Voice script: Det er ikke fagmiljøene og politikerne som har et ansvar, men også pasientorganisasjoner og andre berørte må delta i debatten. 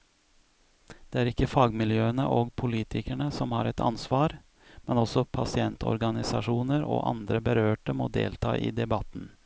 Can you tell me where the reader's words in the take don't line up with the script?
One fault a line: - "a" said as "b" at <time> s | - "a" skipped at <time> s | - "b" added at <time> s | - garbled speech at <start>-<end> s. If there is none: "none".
none